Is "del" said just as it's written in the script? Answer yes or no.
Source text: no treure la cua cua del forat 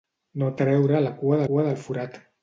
yes